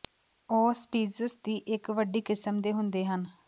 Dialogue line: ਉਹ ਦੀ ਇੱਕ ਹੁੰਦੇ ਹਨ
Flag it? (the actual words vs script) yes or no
yes